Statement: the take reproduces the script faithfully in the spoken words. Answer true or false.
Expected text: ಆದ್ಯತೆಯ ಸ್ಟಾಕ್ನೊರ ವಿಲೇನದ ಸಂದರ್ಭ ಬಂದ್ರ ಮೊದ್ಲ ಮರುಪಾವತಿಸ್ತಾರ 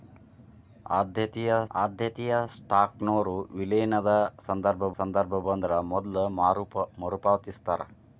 false